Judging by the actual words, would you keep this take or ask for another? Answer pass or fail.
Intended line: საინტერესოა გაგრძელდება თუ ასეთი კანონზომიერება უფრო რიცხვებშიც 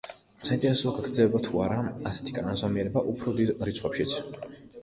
fail